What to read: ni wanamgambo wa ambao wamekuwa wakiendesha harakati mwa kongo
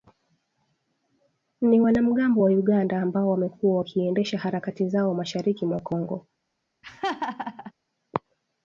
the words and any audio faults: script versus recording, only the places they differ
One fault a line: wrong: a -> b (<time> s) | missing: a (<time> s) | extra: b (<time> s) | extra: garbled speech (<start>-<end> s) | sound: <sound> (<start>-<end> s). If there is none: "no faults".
extra: uganda (2.5 s)
extra: zao mashariki (4.9 s)
sound: laugh (6.8-7.7 s)